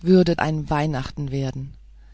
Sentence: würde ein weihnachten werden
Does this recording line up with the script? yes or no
yes